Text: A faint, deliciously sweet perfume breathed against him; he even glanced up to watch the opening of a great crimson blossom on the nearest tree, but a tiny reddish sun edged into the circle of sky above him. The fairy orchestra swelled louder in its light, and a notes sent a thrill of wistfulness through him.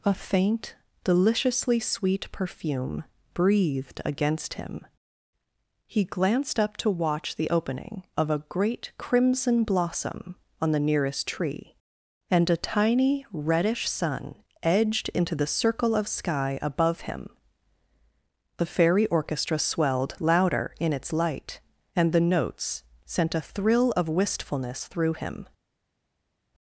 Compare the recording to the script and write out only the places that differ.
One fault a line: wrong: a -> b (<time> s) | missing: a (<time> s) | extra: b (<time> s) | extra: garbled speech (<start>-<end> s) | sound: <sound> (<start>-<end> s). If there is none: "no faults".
missing: even (6.0 s)
wrong: but -> and (12.3 s)
wrong: a -> the (22.1 s)